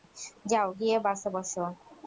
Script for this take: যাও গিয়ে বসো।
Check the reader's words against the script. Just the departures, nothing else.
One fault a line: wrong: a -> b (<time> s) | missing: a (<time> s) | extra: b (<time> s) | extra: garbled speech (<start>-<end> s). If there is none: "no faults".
extra: বাসে (1.1 s)